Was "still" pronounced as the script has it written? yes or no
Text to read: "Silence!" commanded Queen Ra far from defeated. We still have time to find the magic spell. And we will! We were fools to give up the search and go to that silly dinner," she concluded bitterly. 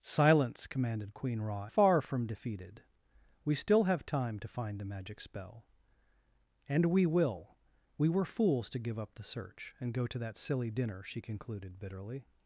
yes